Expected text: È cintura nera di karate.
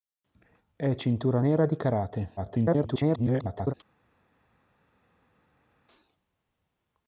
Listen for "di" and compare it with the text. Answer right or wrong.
right